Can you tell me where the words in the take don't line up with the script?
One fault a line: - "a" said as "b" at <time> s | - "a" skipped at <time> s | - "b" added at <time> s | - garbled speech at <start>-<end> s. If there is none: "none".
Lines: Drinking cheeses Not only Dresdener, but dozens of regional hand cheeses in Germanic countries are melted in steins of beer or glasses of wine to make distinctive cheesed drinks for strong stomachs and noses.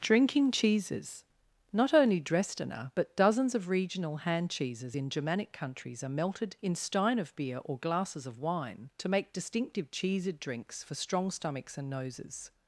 - "steins" said as "stein" at 6.7 s